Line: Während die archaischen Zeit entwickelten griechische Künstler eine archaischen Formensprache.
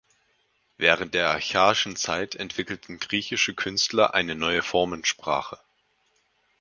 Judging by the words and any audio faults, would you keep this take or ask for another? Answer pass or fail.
fail